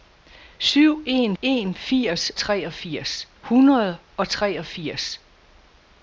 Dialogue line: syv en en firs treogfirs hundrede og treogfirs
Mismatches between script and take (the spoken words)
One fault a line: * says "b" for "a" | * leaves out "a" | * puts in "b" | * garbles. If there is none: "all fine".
all fine